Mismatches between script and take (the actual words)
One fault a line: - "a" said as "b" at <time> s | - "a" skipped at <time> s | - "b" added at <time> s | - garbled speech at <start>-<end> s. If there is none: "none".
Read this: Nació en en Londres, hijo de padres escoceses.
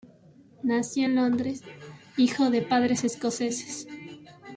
- "en" skipped at 1.2 s